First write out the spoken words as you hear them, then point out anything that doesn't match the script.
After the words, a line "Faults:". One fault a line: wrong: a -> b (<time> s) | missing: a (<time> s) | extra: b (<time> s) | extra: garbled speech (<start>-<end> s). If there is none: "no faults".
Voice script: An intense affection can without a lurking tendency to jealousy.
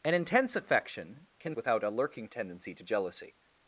An intense affection can without a lurking tendency to jealousy.
Faults:
no faults